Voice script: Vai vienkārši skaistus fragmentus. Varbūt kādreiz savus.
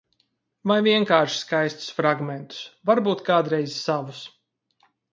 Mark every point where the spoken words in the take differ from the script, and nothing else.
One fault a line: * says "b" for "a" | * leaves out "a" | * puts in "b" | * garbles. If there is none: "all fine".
all fine